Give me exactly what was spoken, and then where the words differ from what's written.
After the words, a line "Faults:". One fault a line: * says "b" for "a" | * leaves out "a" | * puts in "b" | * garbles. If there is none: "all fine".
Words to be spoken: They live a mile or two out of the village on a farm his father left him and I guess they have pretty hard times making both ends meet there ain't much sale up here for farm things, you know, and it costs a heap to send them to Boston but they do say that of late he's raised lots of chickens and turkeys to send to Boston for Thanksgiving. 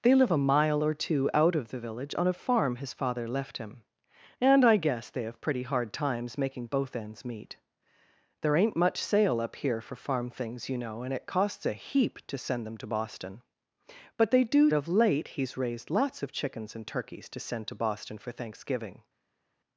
They live a mile or two out of the village on a farm his father left him and I guess they have pretty hard times making both ends meet there ain't much sale up here for farm things, you know, and it costs a heap to send them to Boston but they do of late he's raised lots of chickens and turkeys to send to Boston for Thanksgiving.
Faults:
* leaves out "say that"